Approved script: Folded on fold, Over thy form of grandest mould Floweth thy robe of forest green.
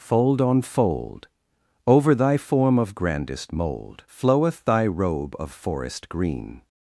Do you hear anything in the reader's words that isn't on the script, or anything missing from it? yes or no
yes